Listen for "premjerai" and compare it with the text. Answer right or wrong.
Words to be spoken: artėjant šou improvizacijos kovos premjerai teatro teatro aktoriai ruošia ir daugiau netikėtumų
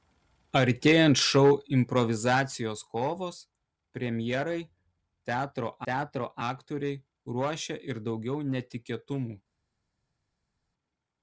right